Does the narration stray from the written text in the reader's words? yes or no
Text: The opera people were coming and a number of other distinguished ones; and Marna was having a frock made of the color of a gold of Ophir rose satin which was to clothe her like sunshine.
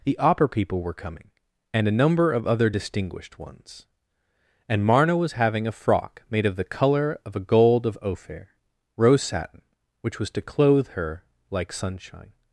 no